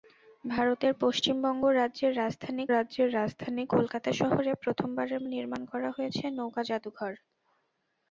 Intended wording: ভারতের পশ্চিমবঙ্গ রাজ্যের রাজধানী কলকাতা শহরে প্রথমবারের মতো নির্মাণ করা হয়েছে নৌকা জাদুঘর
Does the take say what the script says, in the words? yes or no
no